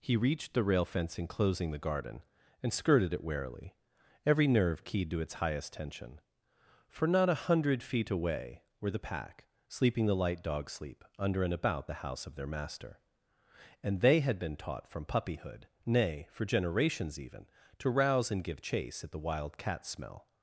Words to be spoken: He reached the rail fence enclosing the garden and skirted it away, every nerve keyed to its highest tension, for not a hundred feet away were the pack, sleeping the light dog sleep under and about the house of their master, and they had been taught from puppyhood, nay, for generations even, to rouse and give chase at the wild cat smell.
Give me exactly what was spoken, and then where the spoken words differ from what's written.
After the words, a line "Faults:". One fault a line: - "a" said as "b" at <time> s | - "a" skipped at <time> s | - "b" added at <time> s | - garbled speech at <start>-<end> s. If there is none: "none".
He reached the rail fence enclosing the garden and skirted it warily, every nerve keyed to its highest tension, for not a hundred feet away were the pack, sleeping the light dog sleep under and about the house of their master, and they had been taught from puppyhood, nay, for generations even, to rouse and give chase at the wild cat smell.
Faults:
- "away" said as "warily" at 3.2 s